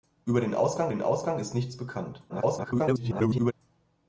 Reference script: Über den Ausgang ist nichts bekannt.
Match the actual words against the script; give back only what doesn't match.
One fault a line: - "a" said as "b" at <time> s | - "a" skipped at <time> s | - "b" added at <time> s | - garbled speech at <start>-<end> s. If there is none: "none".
- "den Ausgang" added at 0.9 s
- garbled speech at 2.3-3.5 s